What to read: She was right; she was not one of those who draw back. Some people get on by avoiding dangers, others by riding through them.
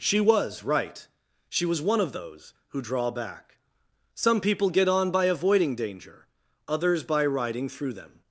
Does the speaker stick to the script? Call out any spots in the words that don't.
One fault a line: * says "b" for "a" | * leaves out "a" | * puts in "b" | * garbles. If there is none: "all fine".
* leaves out "not"
* says "danger" for "dangers"